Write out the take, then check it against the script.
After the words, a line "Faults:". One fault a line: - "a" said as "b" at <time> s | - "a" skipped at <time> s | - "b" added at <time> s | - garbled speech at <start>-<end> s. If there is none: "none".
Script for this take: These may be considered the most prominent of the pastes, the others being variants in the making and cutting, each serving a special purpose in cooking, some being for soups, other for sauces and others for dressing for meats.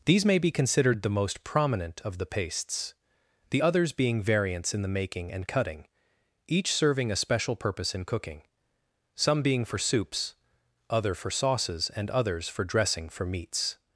These may be considered the most prominent of the pastes, the others being variants in the making and cutting, each serving a special purpose in cooking, some being for soups, other for sauces and others for dressing for meats.
Faults:
none